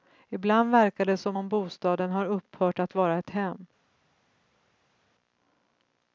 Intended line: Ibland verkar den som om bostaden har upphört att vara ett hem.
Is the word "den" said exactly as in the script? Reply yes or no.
no